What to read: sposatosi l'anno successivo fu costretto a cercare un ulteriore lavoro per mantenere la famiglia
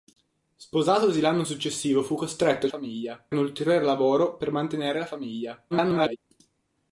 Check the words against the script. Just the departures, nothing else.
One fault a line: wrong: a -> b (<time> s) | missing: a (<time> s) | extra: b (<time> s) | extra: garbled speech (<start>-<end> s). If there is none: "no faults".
wrong: cercare -> famiglia (2.7 s)
extra: garbled speech (5.7-6.2 s)